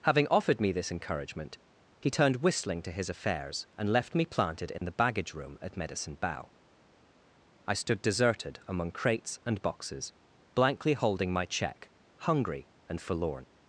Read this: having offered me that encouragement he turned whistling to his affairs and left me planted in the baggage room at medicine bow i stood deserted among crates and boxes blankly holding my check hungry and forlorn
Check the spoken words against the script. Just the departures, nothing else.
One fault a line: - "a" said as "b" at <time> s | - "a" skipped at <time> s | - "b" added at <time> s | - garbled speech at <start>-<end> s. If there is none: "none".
- "that" said as "this" at 0.7 s